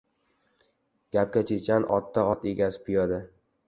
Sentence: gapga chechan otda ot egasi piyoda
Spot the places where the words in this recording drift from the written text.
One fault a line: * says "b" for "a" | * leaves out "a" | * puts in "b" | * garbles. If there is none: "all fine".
all fine